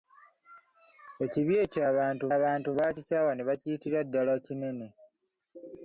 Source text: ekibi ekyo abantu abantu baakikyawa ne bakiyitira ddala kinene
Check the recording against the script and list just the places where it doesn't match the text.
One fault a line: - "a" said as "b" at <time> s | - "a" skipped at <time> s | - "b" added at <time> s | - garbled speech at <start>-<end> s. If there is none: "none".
none